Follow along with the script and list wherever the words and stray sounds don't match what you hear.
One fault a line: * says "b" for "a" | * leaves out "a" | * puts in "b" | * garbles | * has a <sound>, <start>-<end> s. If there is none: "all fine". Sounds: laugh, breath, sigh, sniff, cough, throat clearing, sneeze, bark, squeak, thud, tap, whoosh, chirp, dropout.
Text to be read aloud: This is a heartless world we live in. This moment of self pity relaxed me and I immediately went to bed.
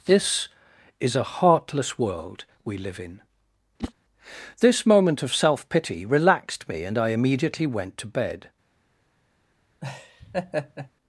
* has a whoosh, 3.8-3.9 s
* has a laugh, 9.8-10.9 s